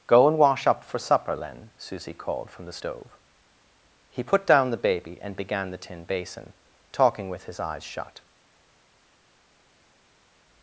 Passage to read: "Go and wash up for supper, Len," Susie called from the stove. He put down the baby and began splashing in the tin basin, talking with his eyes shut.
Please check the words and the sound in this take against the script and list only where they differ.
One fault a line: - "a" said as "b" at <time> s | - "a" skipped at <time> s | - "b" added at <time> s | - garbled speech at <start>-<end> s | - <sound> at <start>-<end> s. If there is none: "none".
- "splashing in" skipped at 5.7 s